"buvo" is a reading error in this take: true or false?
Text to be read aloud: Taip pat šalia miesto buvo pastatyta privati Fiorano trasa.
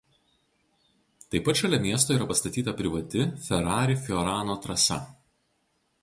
true